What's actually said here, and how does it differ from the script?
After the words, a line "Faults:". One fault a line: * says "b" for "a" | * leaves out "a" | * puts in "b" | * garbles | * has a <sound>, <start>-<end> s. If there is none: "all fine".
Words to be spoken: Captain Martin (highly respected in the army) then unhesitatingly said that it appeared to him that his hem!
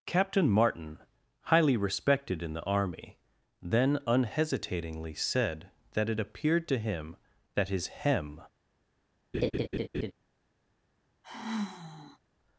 Captain Martin (highly respected in the army) then unhesitatingly said that it appeared to him that his hem!
Faults:
* has a laugh, 9.3-10.1 s
* has a sigh, 11.2-12.2 s